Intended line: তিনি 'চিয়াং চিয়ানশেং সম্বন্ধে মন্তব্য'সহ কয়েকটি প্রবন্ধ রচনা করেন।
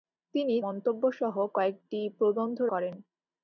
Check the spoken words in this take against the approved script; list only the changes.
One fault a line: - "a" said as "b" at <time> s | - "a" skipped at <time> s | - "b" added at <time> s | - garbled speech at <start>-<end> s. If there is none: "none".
- "চিয়াং চিয়ানশেং সম্বন্ধে" skipped at 0.6 s
- "রচনা" skipped at 2.6 s